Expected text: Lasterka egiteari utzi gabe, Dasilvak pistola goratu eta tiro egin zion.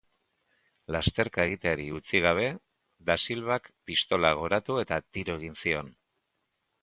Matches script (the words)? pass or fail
pass